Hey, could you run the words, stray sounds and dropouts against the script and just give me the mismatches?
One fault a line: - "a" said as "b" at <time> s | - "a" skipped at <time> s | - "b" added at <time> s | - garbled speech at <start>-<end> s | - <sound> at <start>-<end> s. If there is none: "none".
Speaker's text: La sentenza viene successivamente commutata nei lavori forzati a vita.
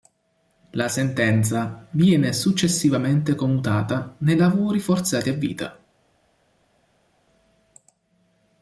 none